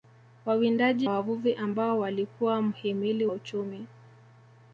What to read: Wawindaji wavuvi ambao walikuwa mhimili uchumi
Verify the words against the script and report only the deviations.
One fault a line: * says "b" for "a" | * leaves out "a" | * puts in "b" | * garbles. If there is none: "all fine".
all fine